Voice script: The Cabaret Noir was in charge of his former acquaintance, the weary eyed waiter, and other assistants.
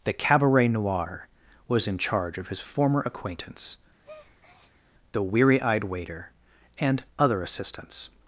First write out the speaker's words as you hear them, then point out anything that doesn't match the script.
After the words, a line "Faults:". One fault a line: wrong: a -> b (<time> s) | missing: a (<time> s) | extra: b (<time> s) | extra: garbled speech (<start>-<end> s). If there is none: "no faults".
The Cabaret Noir was in charge of his former acquaintance, the weary eyed waiter, and other assistants.
Faults:
no faults